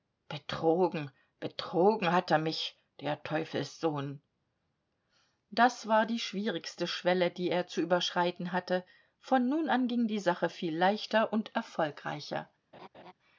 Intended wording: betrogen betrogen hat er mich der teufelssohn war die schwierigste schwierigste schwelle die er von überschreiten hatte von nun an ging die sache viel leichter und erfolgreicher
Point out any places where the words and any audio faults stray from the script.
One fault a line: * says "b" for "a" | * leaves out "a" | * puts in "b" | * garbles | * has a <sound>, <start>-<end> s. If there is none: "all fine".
* puts in "das"
* leaves out "schwierigste"
* says "zu" for "von"
* has a laugh, 12.7-13.1 s